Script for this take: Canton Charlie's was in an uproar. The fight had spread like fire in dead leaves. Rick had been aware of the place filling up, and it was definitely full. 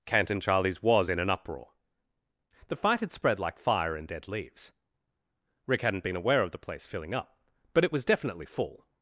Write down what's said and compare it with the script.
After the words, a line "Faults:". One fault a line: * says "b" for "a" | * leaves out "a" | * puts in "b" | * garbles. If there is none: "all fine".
Canton Charlie's was in an uproar. The fight had spread like fire in dead leaves. Rick hadn't been aware of the place filling up, but it was definitely full.
Faults:
* says "hadn't" for "had"
* says "but" for "and"